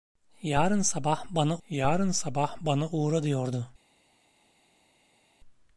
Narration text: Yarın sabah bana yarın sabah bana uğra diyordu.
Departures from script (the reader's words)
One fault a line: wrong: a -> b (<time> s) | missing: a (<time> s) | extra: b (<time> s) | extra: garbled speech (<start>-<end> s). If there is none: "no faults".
no faults